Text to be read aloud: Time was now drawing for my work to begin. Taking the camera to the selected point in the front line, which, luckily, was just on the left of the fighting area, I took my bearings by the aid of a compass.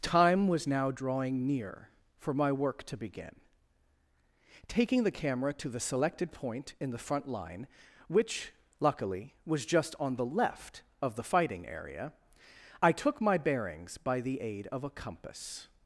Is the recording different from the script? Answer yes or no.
yes